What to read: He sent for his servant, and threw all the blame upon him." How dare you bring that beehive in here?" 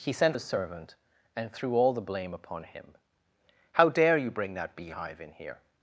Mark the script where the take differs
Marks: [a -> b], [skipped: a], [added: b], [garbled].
He sent [skipped: for] his servant, and threw all the blame upon him." How dare you bring that beehive in here?"